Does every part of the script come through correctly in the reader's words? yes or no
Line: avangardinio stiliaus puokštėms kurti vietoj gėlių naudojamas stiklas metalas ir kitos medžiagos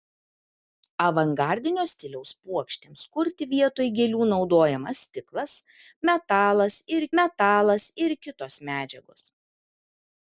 no